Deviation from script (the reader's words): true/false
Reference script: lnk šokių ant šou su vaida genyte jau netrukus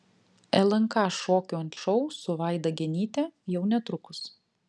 false